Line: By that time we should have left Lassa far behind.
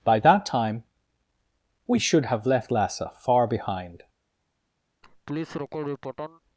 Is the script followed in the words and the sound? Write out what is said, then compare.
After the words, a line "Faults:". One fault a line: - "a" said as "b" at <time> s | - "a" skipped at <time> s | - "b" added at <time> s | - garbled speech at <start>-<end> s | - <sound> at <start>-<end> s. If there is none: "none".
By that time we should have left Lassa far behind.
Faults:
- laugh at 5.0-6.4 s